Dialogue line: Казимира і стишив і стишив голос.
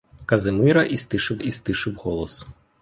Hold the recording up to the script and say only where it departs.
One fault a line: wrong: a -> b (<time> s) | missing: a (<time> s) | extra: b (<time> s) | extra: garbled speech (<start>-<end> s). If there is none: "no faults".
no faults